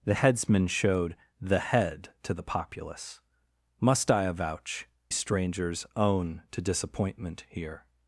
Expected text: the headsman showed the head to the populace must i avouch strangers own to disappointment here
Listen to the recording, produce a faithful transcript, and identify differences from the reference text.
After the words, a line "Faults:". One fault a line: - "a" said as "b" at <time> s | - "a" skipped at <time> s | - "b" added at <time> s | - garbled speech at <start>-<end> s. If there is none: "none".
the headsman showed the head to the populace must i avouch strangers own to disappointment here
Faults:
none